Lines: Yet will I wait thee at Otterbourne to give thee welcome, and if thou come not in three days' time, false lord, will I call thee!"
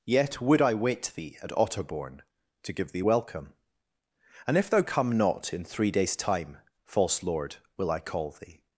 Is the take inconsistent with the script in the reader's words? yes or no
yes